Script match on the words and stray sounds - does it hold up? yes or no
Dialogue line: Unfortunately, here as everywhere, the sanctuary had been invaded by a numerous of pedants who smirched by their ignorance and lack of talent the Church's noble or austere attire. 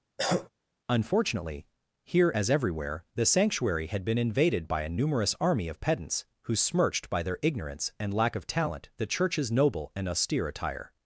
no